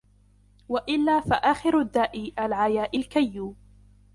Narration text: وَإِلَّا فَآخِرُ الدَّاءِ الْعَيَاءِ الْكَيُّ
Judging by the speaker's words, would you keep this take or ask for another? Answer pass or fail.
pass